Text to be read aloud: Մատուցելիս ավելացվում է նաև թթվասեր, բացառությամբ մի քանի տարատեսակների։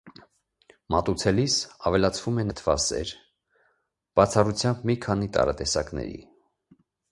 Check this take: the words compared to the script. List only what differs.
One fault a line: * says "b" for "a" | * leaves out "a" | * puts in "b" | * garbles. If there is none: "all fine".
* leaves out "նաև"